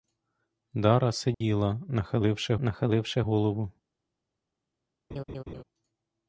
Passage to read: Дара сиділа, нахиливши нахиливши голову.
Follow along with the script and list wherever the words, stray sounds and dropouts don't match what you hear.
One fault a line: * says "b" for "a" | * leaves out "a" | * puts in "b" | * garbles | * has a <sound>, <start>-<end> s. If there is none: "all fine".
* has a dropout, 1.3-1.4 s
* has a laugh, 5.1-5.6 s